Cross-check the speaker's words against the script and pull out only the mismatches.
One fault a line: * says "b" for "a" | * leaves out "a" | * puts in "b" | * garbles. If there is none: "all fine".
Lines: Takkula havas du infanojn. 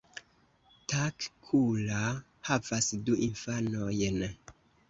all fine